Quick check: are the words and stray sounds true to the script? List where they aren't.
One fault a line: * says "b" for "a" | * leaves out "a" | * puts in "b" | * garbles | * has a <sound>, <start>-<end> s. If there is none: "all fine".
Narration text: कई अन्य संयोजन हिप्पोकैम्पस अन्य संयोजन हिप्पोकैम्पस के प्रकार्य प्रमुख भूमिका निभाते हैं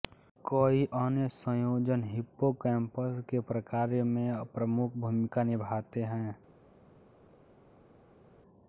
* leaves out "अन्य संयोजन हिप्पोकैम्पस"
* puts in "में"